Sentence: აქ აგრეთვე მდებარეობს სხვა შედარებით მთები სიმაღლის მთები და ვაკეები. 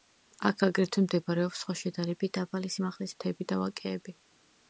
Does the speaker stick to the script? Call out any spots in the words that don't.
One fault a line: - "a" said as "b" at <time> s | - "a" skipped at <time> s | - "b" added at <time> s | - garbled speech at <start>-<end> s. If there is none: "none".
- "მთები" said as "დაბალი" at 2.4 s